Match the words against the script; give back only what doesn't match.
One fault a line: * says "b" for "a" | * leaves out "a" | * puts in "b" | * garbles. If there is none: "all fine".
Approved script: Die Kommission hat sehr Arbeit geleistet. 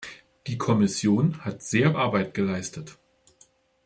all fine